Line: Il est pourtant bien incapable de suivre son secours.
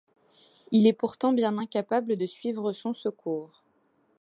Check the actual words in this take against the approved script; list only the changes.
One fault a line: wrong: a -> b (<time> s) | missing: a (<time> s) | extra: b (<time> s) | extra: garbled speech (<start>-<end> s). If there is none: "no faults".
no faults